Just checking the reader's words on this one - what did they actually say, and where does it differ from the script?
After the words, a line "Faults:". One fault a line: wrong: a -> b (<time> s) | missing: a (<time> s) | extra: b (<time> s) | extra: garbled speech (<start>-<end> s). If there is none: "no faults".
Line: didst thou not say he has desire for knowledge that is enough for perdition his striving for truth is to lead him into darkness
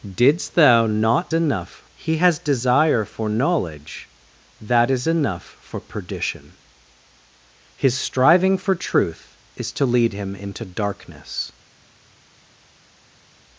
didst thou not enough he has desire for knowledge that is enough for perdition his striving for truth is to lead him into darkness
Faults:
wrong: say -> enough (1.3 s)